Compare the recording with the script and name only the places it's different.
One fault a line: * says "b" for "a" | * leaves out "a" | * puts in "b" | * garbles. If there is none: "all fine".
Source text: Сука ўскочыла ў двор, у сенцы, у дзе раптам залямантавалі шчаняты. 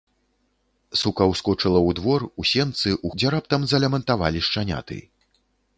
all fine